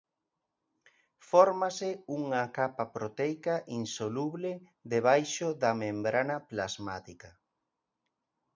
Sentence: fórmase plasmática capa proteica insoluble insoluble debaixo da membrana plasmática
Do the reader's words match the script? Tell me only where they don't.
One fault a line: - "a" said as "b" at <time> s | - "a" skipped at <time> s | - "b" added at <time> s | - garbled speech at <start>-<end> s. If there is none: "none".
- "plasmática" said as "unha" at 2.2 s
- "insoluble" skipped at 4.5 s